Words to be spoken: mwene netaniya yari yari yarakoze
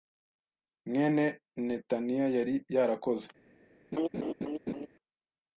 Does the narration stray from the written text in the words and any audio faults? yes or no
yes